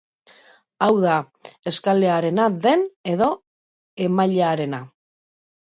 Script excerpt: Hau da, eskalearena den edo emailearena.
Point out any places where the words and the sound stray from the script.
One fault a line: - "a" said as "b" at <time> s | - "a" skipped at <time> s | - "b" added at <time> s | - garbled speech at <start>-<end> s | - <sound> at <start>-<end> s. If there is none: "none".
none